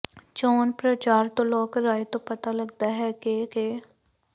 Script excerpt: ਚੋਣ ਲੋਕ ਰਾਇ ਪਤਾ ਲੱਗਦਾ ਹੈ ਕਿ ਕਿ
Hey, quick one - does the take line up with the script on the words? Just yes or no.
no